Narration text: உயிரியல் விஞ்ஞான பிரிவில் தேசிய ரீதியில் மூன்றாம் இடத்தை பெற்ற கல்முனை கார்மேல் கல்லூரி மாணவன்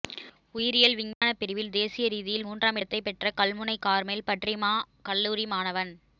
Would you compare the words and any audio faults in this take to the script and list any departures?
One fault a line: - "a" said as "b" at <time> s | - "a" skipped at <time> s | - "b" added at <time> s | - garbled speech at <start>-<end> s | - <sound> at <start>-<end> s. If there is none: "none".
- dropout at 1.1-1.2 s
- "பற்றிமா" added at 4.3 s